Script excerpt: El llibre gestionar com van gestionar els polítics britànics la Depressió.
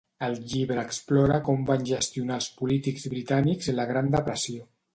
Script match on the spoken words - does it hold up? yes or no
no